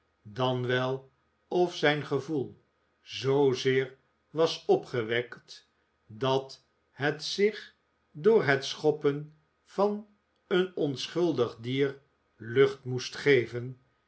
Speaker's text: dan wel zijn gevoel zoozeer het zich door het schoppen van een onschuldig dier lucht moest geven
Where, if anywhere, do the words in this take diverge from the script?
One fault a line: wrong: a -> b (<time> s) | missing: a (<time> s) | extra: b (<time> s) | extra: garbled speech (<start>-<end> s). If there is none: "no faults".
extra: of (1.5 s)
extra: was opgewekt dat (4.3 s)